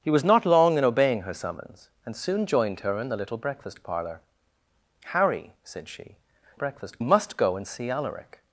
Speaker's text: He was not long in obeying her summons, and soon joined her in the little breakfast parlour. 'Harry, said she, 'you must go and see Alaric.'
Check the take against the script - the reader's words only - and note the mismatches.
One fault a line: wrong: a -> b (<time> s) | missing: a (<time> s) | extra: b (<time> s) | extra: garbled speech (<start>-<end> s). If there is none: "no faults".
wrong: you -> breakfast (6.5 s)